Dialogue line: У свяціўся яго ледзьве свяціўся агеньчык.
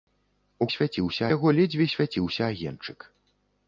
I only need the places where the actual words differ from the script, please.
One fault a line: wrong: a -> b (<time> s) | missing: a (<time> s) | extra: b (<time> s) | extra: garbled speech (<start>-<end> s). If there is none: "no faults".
no faults